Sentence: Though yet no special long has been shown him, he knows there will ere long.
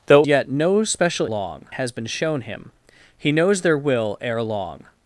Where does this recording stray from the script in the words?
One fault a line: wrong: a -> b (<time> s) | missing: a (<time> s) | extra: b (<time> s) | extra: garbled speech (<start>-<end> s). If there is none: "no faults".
no faults